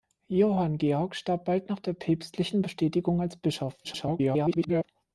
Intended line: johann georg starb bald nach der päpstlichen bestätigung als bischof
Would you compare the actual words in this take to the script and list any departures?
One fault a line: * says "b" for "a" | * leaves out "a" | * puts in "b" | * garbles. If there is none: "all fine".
* garbles